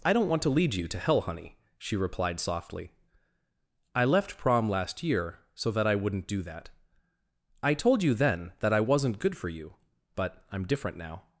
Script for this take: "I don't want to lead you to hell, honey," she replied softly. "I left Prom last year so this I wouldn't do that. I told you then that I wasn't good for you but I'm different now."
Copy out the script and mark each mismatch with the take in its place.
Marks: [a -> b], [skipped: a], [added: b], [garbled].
"I don't want to lead you to hell, honey," she replied softly. "I left Prom last year so [this -> that] I wouldn't do that. I told you then that I wasn't good for you but I'm different now."